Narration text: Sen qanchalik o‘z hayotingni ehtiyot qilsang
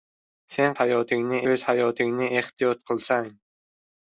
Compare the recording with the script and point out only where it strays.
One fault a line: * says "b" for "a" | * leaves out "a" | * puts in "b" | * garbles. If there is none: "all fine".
* says "hayotingni" for "qanchalik"